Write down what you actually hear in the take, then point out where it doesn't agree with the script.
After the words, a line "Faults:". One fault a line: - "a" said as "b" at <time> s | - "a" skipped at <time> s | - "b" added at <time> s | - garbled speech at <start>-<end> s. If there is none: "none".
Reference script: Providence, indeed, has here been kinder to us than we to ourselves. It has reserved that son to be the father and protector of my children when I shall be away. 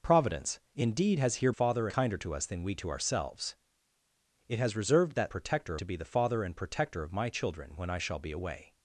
Providence, indeed, has here father kinder to us than we to ourselves. It has reserved that protector to be the father and protector of my children when I shall be away.
Faults:
- "been" said as "father" at 1.5 s
- "son" said as "protector" at 5.3 s